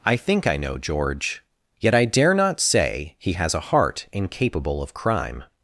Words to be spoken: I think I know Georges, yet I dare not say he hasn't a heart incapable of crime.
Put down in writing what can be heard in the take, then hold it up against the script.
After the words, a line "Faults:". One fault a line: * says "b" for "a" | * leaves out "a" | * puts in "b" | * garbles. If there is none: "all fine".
I think I know George, yet I dare not say he has a heart incapable of crime.
Faults:
* says "George" for "Georges"
* says "has" for "hasn't"